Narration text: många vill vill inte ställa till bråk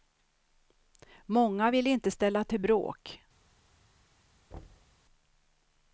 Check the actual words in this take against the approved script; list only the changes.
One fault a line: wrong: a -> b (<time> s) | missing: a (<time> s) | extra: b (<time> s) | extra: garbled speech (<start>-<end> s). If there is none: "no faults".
missing: vill (1.9 s)